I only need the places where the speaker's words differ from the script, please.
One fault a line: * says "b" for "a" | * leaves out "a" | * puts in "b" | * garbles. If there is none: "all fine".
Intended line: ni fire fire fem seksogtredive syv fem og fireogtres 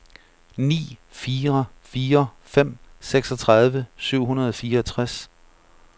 * says "hundrede" for "fem"